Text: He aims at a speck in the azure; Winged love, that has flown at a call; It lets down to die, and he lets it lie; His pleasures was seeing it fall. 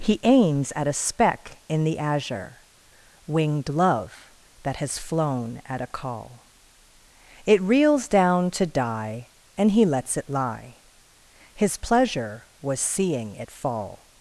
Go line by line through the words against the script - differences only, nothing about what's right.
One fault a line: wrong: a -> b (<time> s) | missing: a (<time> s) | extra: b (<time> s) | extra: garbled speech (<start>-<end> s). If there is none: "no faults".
wrong: lets -> reels (7.6 s)
wrong: pleasures -> pleasure (11.8 s)